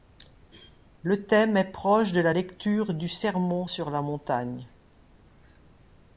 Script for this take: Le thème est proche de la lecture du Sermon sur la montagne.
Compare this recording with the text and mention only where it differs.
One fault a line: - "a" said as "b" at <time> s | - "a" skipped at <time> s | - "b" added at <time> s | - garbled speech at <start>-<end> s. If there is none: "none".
none